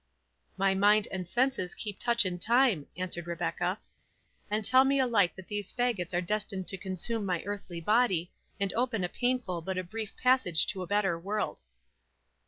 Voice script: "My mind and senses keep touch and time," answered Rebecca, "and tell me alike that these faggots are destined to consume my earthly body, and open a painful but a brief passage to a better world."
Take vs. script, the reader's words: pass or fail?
pass